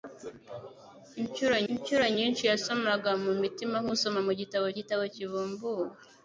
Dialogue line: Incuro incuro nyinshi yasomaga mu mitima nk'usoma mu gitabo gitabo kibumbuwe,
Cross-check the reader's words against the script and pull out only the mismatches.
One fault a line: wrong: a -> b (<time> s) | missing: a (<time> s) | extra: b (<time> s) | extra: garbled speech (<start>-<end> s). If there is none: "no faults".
no faults